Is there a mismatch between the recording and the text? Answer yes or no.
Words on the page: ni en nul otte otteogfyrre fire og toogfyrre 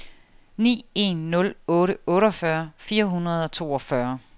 yes